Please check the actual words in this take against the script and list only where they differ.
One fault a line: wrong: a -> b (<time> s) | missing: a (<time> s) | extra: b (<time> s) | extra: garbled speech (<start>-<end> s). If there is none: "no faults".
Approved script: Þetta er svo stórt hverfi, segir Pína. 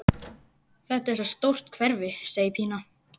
no faults